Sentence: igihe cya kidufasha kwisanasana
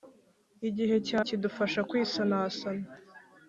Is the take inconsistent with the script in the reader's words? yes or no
no